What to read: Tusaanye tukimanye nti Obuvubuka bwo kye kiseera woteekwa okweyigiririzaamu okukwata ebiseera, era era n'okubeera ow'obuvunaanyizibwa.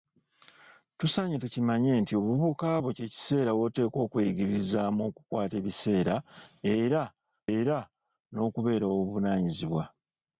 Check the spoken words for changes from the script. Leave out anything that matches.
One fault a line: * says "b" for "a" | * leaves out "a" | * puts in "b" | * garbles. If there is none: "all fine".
all fine